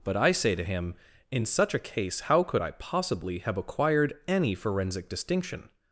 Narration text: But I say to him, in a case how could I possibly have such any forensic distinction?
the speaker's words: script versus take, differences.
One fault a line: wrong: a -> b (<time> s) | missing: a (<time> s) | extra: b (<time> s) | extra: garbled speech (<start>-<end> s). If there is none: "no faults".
extra: such (1.4 s)
wrong: such -> acquired (3.6 s)